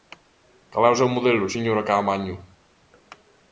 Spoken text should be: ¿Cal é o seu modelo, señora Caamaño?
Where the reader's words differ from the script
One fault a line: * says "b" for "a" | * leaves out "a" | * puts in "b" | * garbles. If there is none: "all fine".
all fine